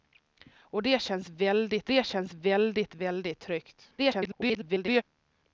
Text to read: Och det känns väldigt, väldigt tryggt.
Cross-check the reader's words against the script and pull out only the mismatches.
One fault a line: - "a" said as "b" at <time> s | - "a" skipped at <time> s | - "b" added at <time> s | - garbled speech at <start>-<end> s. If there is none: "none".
- "det känns väldigt" added at 1.9 s
- garbled speech at 4.0-5.0 s